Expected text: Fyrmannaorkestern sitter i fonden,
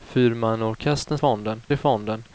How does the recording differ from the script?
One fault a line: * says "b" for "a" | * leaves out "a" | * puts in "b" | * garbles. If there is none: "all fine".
* says "fonden" for "sitter"